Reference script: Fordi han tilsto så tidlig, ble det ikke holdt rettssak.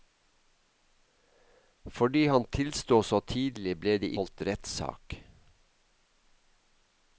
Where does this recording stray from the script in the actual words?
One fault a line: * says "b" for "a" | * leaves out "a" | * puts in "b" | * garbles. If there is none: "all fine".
* leaves out "ikke"